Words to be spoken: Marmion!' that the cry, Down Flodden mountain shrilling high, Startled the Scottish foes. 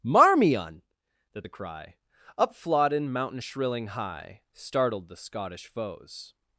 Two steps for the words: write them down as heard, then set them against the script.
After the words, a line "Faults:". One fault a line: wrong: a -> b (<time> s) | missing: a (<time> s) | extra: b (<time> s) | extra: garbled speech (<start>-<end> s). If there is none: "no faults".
Marmion!' that the cry, Up Flodden mountain shrilling high, Startled the Scottish foes.
Faults:
wrong: Down -> Up (2.4 s)